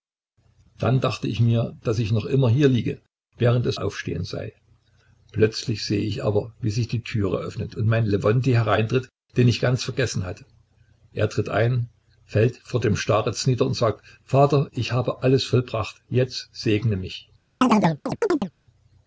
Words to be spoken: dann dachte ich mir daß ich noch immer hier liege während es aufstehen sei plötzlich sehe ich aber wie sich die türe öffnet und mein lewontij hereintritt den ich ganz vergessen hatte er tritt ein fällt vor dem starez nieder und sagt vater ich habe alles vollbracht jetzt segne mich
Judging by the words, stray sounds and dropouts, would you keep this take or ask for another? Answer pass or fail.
fail